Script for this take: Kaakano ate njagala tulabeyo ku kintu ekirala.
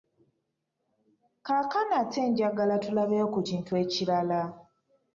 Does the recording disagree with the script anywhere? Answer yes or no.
no